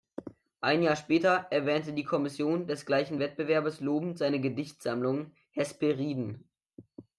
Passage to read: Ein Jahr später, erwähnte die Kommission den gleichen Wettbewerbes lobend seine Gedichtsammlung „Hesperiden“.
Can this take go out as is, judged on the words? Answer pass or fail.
fail